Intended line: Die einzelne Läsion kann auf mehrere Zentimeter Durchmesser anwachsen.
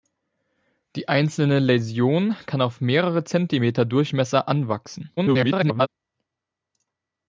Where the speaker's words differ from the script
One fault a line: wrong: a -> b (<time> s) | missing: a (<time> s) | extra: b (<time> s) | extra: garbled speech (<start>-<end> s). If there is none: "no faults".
extra: garbled speech (5.2-5.9 s)